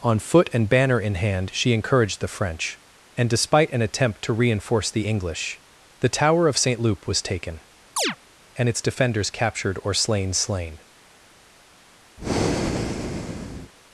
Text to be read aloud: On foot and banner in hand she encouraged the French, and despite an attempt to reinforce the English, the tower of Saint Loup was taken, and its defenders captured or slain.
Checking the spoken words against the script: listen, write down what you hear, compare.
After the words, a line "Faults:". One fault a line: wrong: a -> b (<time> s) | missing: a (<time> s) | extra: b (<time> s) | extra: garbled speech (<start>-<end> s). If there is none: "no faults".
On foot and banner in hand she encouraged the French, and despite an attempt to reinforce the English, the tower of Saint Loup was taken, and its defenders captured or slain slain.
Faults:
extra: slain (10.3 s)